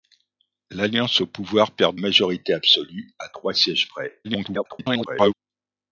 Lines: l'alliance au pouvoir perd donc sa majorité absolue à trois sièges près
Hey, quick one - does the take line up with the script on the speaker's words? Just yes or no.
no